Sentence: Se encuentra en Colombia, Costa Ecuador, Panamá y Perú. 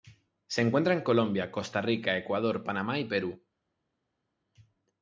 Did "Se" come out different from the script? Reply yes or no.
no